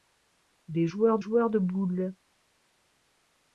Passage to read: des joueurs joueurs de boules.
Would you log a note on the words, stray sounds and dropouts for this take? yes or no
no